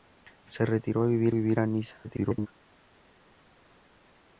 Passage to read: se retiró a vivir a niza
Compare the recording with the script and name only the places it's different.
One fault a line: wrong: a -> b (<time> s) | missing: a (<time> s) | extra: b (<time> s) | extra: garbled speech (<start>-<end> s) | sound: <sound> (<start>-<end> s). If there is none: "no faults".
extra: vivir (1.3 s)
extra: garbled speech (2.0-2.5 s)